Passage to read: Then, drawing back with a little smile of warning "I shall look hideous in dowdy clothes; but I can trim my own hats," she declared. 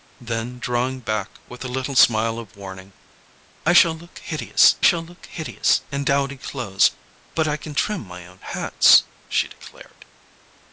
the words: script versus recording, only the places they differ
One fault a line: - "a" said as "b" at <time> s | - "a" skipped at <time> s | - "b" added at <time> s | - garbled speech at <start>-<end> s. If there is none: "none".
- "shall look hideous" added at 4.8 s